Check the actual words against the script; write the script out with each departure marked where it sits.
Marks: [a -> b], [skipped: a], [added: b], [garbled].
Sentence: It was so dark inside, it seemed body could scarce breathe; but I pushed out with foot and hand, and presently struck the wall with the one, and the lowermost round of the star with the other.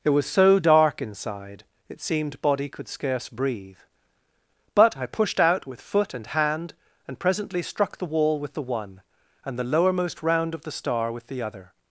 It was so dark inside, it seemed body could scarce breathe; but I pushed out with foot and hand, and presently struck the wall with the one, and the lowermost round of the star with the other.